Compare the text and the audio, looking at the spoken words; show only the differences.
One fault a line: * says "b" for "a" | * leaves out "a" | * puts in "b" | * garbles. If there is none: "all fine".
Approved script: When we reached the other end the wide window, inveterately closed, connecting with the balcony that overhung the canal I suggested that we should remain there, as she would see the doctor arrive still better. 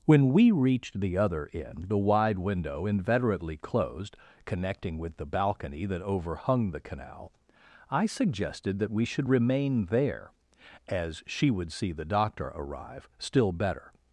all fine